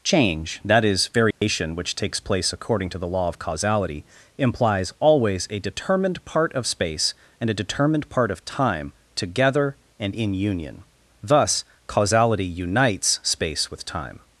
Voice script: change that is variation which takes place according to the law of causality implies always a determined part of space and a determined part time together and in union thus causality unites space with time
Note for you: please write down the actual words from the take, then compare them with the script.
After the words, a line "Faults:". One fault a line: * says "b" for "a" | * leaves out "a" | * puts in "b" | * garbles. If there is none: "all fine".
change that is variation which takes place according to the law of causality implies always a determined part of space and a determined part of time together and in union thus causality unites space with time
Faults:
* puts in "of"